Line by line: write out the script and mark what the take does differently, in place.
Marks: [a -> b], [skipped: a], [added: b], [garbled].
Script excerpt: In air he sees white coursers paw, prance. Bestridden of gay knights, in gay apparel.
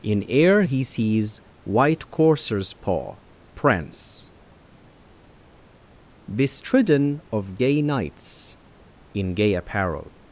In air he sees white coursers paw, prance. Bestridden of gay knights, in gay apparel.